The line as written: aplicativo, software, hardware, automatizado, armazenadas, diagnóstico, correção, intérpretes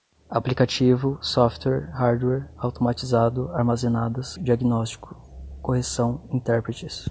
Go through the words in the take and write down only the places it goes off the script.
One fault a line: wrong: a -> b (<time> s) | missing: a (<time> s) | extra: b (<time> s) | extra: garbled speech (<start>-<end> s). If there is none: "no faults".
no faults